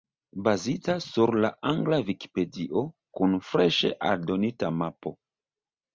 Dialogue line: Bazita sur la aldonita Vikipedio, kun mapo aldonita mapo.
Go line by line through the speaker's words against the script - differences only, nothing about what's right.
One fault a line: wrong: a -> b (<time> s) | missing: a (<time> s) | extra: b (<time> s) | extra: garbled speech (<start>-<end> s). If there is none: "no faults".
wrong: aldonita -> angla (1.7 s)
wrong: mapo -> freŝe (3.5 s)